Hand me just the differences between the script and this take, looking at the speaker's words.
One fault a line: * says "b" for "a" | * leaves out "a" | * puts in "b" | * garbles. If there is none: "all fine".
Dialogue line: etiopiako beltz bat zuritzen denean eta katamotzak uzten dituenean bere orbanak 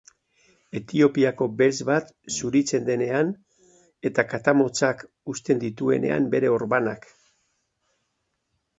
all fine